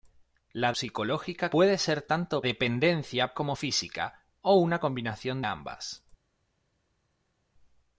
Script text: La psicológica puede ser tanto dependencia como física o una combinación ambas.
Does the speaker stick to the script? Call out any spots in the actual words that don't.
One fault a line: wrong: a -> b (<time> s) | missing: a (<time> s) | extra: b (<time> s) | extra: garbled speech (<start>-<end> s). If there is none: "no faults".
no faults